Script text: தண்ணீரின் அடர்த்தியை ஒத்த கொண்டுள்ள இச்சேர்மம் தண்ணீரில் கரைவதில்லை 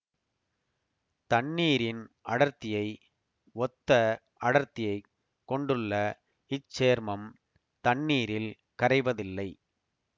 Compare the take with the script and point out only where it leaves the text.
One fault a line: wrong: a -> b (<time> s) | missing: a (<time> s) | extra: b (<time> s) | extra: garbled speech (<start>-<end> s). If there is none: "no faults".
extra: அடர்த்தியைக் (4.4 s)